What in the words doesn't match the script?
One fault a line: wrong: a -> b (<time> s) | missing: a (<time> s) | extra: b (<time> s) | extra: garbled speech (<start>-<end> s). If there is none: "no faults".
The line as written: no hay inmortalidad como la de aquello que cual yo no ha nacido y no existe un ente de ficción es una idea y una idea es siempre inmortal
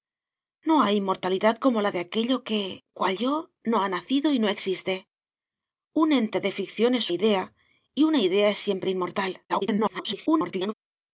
missing: una (7.1 s)
extra: garbled speech (9.5-10.7 s)